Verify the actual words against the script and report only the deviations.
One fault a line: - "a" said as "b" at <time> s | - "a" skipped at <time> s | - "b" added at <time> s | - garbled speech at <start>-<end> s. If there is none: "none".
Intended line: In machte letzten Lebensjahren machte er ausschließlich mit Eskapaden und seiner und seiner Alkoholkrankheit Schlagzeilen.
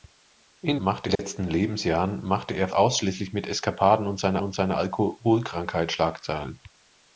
none